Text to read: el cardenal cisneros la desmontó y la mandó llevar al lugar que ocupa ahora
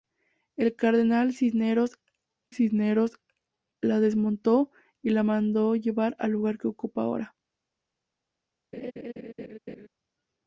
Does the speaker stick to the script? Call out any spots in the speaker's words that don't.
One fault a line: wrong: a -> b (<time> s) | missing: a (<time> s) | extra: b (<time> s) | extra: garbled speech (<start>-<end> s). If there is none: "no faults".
extra: cisneros (2.5 s)